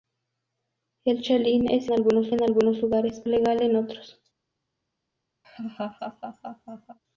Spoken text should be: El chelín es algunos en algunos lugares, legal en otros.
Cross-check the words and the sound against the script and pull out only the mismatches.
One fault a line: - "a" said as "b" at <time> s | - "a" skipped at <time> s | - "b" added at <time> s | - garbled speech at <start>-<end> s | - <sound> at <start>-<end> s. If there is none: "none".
- laugh at 5.4-7.0 s